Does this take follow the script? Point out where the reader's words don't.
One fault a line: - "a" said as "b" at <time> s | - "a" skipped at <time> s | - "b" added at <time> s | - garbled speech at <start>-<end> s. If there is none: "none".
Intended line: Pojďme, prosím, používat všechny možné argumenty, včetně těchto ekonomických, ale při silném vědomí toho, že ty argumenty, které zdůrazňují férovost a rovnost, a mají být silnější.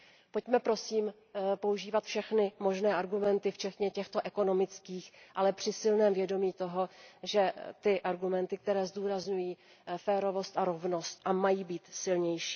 none